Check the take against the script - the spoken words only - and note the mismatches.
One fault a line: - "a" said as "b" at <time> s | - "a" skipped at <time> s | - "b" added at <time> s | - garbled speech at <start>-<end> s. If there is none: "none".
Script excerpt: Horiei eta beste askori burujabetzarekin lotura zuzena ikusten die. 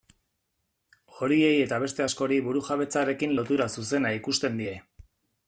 none